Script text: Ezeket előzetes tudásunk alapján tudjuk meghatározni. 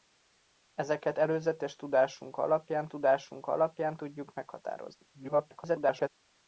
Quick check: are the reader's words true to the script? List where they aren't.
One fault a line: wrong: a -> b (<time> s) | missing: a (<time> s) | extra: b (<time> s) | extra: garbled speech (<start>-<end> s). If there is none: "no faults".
extra: tudásunk alapján (2.9 s)
extra: garbled speech (5.1-6.1 s)